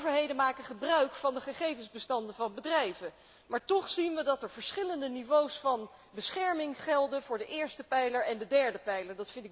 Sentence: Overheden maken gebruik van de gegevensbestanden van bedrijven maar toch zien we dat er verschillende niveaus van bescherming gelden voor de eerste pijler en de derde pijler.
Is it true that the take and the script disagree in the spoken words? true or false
false